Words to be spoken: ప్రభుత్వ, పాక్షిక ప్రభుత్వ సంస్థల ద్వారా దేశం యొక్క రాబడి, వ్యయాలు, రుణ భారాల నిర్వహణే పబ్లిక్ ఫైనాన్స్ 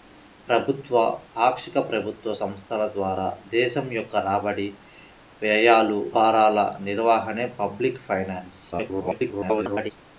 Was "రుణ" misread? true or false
true